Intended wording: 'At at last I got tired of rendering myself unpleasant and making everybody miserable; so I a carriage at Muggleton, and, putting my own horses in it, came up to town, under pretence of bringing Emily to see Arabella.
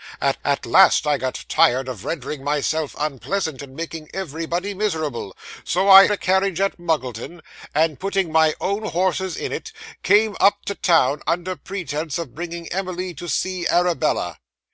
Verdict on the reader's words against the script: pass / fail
pass